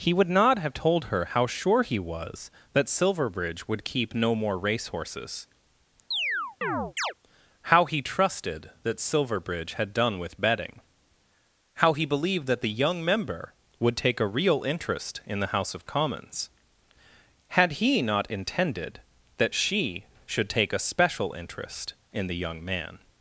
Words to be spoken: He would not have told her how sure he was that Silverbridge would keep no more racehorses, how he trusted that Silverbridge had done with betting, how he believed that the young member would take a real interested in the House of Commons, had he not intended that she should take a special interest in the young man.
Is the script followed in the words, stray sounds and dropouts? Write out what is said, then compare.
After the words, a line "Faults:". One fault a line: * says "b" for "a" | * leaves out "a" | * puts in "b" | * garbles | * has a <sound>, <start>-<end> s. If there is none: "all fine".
He would not have told her how sure he was that Silverbridge would keep no more racehorses, how he trusted that Silverbridge had done with betting, how he believed that the young member would take a real interest in the House of Commons, had he not intended that she should take a special interest in the young man.
Faults:
* has a chirp, 6.1-7.1 s
* says "interest" for "interested"